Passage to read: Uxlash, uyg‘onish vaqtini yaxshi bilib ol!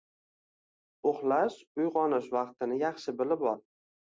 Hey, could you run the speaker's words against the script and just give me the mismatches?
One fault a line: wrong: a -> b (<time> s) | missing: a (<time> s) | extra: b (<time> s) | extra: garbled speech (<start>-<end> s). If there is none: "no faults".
no faults